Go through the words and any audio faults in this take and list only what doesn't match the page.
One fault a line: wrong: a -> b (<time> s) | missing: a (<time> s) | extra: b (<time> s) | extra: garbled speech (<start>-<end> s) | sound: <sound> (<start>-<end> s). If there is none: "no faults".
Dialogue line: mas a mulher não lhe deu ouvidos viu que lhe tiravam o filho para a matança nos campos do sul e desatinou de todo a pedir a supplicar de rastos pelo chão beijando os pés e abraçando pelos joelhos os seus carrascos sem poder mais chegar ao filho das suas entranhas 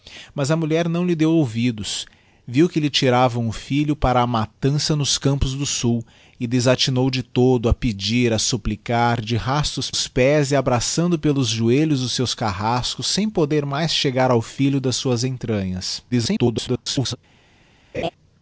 missing: pelo chão beijando (9.9 s)
extra: garbled speech (16.1-17.2 s)
sound: laugh (17.9-18.1 s)